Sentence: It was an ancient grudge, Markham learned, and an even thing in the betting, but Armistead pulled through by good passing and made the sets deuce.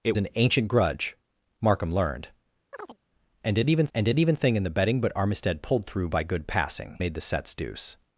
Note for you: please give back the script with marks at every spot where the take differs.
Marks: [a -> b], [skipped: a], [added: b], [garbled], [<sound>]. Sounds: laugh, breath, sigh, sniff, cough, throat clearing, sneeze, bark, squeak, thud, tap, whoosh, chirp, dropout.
It [skipped: was] an ancient grudge, Markham learned, [chirp] and an even [added: and an even] thing in the betting, but Armistead pulled through by good passing [skipped: and] made the sets deuce.